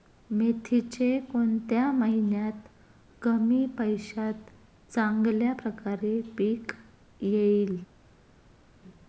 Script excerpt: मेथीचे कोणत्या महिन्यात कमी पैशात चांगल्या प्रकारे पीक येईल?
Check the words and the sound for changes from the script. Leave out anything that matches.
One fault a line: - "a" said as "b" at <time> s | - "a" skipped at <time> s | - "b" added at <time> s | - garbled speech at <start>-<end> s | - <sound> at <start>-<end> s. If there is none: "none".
none